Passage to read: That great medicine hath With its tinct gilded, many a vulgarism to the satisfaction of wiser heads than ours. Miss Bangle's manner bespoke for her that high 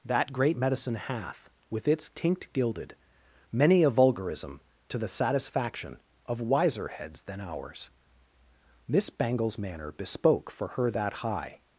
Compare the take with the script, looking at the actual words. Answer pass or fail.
pass